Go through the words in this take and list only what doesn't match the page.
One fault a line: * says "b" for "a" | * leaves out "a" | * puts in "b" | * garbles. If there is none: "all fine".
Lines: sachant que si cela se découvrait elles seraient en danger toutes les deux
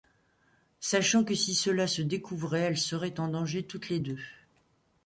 all fine